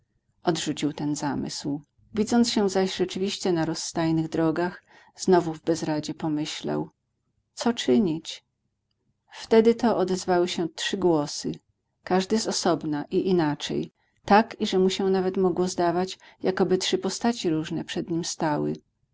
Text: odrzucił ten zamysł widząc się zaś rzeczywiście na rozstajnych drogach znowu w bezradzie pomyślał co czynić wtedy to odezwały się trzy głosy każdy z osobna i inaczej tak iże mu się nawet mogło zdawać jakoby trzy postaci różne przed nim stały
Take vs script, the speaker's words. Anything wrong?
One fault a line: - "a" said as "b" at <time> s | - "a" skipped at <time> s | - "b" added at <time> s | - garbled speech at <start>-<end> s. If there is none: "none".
none